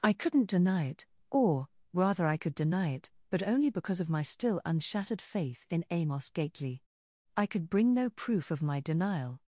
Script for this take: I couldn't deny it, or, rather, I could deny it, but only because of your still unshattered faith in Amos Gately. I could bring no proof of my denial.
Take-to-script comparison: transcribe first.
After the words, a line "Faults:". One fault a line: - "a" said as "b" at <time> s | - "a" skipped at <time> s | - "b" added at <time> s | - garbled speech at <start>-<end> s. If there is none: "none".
I couldn't deny it, or, rather, I could deny it, but only because of my still unshattered faith in Amos Gately. I could bring no proof of my denial.
Faults:
- "your" said as "my" at 4.1 s